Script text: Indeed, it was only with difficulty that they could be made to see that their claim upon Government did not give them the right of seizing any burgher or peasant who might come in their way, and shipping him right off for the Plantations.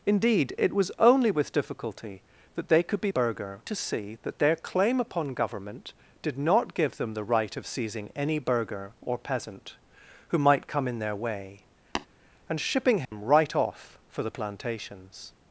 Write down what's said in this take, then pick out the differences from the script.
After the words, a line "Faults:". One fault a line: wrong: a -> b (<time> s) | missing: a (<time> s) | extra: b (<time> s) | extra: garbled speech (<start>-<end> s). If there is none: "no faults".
Indeed, it was only with difficulty that they could be burgher to see that their claim upon Government did not give them the right of seizing any burgher or peasant who might come in their way, and shipping him right off for the Plantations.
Faults:
wrong: made -> burgher (3.1 s)